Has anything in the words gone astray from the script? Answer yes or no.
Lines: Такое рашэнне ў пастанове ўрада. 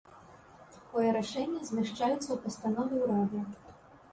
yes